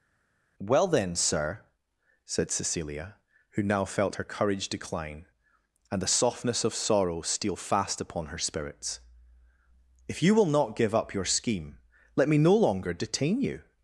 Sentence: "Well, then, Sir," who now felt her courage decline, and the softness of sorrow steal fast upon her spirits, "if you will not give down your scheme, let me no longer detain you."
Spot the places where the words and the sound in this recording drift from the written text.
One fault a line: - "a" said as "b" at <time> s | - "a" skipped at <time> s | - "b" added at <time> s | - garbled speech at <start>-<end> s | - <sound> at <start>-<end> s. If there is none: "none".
- "said Cecilia" added at 2.3 s
- "down" said as "up" at 10.9 s